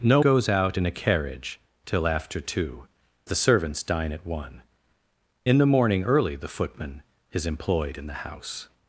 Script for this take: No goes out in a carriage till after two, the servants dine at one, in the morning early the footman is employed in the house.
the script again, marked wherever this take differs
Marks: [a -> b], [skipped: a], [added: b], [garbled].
No goes out in a carriage till after two, the servants dine at one, in the morning early the footman is employed in the house.